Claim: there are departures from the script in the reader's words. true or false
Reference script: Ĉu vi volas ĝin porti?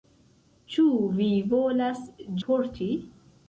true